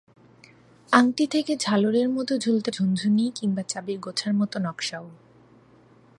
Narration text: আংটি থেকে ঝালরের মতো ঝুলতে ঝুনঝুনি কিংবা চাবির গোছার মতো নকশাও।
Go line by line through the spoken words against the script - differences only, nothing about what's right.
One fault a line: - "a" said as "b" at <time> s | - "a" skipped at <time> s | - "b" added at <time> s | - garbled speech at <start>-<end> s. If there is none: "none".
none